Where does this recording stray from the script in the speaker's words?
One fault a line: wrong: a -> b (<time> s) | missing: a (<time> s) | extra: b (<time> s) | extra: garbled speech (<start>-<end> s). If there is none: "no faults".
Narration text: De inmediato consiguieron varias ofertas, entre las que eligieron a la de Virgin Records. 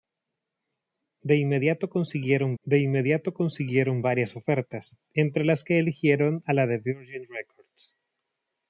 extra: de inmediato consiguieron (2.6 s)